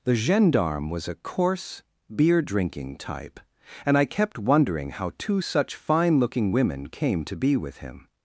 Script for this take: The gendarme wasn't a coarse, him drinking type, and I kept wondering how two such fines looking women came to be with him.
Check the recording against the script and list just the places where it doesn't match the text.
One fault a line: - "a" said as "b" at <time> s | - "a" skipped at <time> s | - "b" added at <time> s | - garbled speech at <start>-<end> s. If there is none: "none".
- "wasn't" said as "was" at 0.9 s
- "him" said as "beer" at 2.1 s
- "fines" said as "fine" at 5.7 s